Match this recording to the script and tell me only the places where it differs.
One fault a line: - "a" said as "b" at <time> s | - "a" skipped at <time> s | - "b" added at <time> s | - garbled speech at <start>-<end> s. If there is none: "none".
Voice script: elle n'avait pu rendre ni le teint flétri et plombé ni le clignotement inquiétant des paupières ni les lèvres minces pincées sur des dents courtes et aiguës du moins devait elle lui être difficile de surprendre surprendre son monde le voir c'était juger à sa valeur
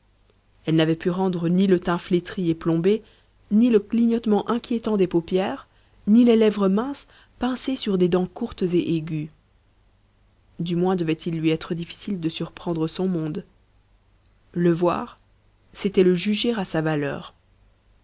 - "elle" said as "il" at 11.1 s
- "surprendre" skipped at 12.9 s
- "le" added at 16.0 s